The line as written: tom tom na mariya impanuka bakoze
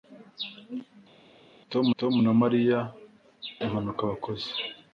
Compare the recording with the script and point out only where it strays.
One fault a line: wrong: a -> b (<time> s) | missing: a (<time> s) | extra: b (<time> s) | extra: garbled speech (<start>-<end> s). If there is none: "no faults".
no faults